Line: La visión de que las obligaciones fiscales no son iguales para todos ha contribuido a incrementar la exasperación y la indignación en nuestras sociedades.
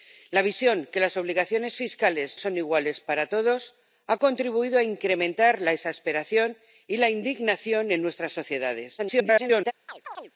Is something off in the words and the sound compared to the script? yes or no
yes